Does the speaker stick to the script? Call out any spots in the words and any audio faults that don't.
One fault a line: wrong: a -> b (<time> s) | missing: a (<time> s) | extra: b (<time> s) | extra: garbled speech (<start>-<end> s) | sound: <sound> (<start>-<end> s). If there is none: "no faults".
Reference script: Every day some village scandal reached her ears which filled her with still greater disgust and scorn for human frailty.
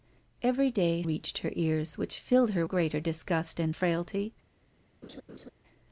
missing: some village scandal (1.0 s)
missing: with still (2.6 s)
missing: scorn for human (3.8 s)
sound: laugh (5.0-5.5 s)